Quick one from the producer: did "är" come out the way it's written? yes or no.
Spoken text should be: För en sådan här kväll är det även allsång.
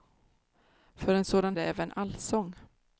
no